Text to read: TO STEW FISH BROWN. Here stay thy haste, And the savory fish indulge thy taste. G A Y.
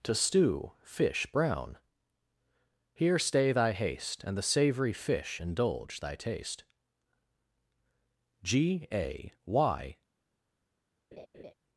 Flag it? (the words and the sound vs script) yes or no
yes